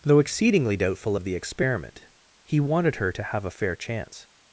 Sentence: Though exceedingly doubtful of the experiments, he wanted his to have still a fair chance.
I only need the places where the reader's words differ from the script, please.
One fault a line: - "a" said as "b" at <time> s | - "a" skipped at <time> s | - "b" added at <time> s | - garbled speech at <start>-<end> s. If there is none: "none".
- "experiments" said as "experiment" at 1.3 s
- "his" said as "her" at 3.0 s
- "still" skipped at 3.4 s